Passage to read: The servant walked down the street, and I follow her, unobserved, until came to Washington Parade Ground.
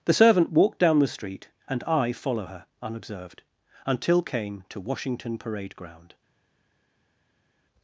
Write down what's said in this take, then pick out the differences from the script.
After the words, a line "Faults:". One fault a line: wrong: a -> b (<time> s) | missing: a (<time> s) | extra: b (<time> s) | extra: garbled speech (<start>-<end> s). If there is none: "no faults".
The servant walked down the street, and I follow her, unobserved, until came to Washington Parade Ground.
Faults:
no faults